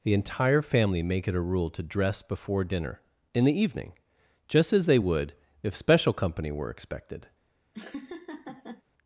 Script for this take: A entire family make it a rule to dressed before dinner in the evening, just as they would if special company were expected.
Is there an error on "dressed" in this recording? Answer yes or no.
yes